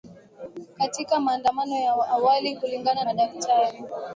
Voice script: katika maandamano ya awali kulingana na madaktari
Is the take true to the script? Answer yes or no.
no